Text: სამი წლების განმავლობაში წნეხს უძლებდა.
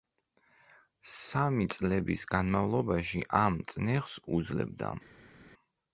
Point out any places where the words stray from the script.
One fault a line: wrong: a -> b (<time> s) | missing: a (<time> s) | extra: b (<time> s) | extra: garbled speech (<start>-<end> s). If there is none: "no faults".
extra: ამ (3.4 s)